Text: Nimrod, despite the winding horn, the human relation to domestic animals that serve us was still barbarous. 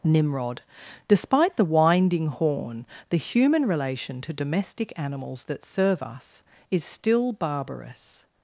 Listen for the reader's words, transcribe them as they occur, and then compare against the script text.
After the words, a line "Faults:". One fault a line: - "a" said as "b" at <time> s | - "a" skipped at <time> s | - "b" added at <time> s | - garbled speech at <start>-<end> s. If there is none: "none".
Nimrod, despite the winding horn, the human relation to domestic animals that serve us is still barbarous.
Faults:
- "was" said as "is" at 6.7 s